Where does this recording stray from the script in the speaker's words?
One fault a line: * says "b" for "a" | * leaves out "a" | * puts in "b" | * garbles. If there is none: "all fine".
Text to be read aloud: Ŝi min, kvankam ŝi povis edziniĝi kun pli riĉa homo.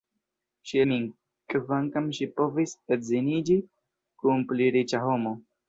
all fine